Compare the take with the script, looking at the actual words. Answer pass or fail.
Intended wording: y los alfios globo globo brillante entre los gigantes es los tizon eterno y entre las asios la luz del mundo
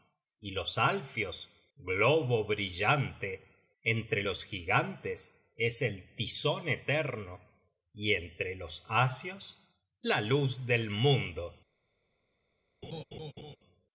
fail